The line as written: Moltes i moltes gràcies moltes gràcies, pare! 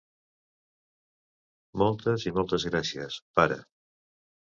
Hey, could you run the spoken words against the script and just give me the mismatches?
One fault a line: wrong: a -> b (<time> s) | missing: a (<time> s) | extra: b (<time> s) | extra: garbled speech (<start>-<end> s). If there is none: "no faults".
missing: moltes gràcies (3.2 s)